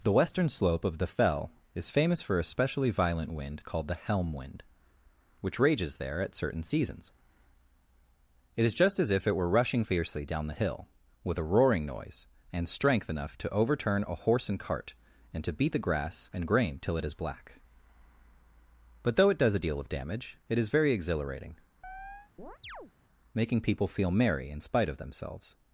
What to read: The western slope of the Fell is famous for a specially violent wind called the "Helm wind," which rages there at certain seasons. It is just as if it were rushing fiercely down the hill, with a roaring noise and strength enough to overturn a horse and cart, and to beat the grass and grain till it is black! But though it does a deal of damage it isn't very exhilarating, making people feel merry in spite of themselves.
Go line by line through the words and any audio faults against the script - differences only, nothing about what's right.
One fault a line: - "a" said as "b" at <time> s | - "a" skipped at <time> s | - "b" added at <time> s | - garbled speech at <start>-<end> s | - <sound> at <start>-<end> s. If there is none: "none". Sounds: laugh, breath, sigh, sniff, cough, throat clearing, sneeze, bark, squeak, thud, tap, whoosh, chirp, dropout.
- "isn't" said as "is" at 20.6 s
- chirp at 21.8-22.9 s